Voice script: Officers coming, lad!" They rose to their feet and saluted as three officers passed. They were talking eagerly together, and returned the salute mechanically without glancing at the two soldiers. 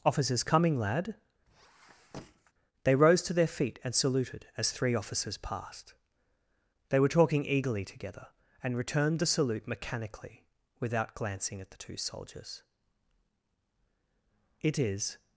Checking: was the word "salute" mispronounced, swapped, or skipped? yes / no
no